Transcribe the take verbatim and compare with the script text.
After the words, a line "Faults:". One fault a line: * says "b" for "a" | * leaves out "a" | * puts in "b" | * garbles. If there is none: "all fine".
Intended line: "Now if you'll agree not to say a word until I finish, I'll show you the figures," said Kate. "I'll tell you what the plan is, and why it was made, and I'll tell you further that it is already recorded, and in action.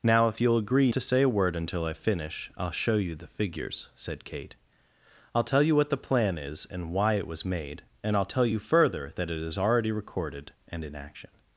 "Now if you'll agree to say a word until I finish, I'll show you the figures," said Kate. "I'll tell you what the plan is, and why it was made, and I'll tell you further that it is already recorded, and in action.
Faults:
* leaves out "not"